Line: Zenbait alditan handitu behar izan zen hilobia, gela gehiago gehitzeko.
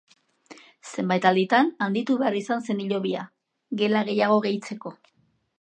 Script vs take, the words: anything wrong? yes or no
no